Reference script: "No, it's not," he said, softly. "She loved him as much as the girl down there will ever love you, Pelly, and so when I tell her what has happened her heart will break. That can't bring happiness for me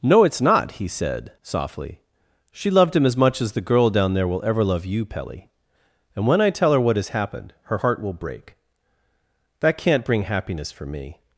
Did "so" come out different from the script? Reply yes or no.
yes